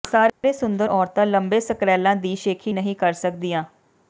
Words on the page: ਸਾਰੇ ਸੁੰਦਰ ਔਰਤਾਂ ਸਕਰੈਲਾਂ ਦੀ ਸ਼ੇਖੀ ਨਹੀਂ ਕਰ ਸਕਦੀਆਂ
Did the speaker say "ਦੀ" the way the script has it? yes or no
yes